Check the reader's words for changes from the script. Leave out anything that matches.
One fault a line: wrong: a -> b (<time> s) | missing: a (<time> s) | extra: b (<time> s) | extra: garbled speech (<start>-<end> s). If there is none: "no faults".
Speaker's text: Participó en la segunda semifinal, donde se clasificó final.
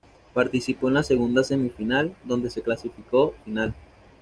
no faults